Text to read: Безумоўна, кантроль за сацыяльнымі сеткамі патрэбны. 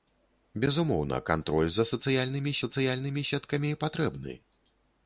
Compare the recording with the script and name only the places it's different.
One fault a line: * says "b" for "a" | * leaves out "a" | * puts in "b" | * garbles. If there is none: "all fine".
* puts in "сацыяльнымі"